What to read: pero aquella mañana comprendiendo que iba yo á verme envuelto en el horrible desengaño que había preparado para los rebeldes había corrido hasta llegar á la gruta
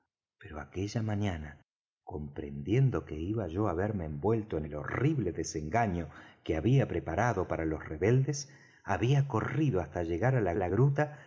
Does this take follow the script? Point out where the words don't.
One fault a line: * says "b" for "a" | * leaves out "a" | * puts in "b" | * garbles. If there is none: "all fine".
* puts in "la"